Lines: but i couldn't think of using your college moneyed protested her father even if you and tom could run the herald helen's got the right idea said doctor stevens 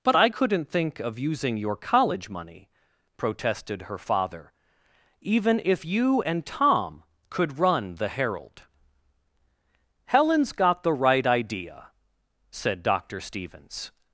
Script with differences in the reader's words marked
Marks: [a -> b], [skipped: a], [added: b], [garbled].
but i couldn't think of using your college [moneyed -> money] protested her father even if you and tom could run the herald helen's got the right idea said doctor stevens